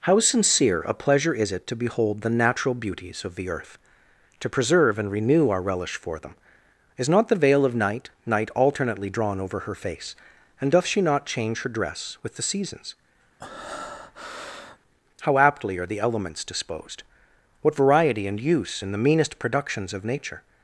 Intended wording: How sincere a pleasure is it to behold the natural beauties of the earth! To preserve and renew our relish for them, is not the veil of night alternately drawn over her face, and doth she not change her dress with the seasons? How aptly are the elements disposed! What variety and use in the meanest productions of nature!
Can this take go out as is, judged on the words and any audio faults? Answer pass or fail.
fail